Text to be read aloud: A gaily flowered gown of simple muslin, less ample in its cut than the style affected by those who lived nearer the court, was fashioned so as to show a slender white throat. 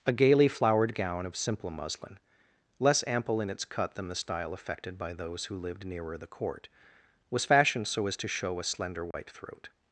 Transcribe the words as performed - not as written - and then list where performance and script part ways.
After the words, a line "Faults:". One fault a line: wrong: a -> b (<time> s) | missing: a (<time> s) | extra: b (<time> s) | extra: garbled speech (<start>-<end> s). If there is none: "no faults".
A gaily flowered gown of simple muslin, less ample in its cut than the style affected by those who lived nearer the court, was fashioned so as to show a slender white throat.
Faults:
no faults